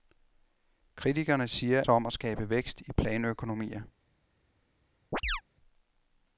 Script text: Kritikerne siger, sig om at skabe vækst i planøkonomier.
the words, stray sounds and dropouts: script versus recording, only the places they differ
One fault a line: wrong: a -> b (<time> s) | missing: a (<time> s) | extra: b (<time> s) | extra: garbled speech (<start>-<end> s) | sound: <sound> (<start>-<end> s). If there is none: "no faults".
sound: chirp (5.1-5.4 s)